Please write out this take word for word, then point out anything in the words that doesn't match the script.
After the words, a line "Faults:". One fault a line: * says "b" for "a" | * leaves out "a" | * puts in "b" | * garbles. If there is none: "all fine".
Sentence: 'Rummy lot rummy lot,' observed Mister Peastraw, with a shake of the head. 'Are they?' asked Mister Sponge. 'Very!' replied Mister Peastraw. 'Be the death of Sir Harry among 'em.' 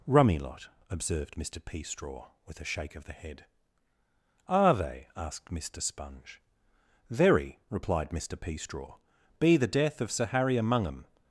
'Rummy lot,' observed Mister Peastraw, with a shake of the head. 'Are they?' asked Mister Sponge. 'Very!' replied Mister Peastraw. 'Be the death of Sir Harry among 'em.'
Faults:
* leaves out "rummy lot"